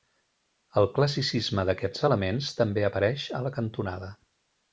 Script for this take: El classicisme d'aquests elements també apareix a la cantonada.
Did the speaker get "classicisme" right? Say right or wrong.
right